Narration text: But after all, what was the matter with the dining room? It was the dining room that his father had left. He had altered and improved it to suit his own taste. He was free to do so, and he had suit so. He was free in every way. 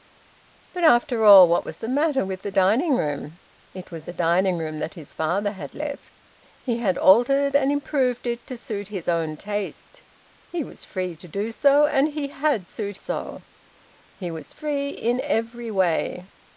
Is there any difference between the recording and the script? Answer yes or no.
no